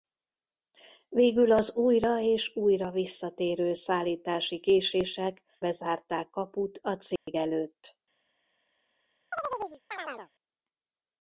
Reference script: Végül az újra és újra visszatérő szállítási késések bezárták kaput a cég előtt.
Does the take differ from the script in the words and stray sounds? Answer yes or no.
yes